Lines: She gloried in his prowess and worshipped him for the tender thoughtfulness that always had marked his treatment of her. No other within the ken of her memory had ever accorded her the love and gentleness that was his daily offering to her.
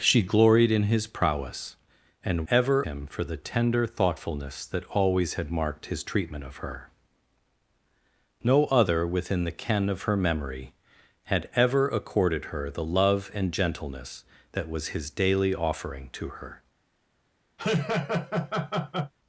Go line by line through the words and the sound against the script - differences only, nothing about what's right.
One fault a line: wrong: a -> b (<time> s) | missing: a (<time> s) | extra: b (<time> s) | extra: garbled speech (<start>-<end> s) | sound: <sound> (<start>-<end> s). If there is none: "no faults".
wrong: worshipped -> ever (2.5 s)
sound: laugh (17.6-19.1 s)